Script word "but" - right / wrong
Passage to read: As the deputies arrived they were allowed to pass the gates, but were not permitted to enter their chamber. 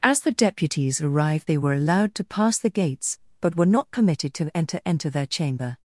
right